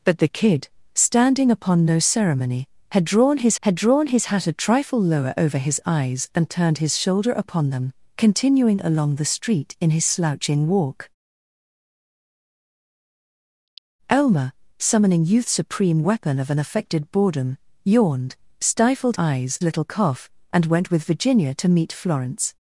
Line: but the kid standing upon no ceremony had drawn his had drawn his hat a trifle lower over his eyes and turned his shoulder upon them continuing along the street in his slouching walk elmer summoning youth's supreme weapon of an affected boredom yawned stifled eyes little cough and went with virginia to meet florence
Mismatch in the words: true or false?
false